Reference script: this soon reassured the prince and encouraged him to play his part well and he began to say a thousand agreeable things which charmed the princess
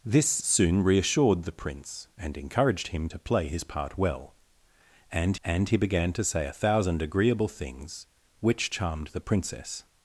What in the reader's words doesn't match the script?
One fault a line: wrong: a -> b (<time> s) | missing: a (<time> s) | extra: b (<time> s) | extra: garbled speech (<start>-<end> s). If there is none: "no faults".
extra: and (5.4 s)